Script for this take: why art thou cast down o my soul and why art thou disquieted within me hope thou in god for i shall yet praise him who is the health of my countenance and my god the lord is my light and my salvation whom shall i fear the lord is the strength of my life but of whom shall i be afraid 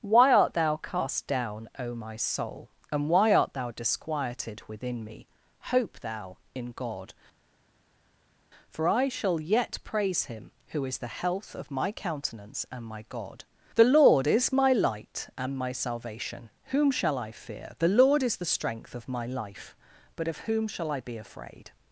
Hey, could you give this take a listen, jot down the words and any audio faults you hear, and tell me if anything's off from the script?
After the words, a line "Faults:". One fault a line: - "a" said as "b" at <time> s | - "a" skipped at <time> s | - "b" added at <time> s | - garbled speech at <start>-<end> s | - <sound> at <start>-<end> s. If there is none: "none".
why art thou cast down o my soul and why art thou disquieted within me hope thou in god for i shall yet praise him who is the health of my countenance and my god the lord is my light and my salvation whom shall i fear the lord is the strength of my life but of whom shall i be afraid
Faults:
none